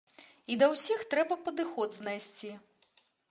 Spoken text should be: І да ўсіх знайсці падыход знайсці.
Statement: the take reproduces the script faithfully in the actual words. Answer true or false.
false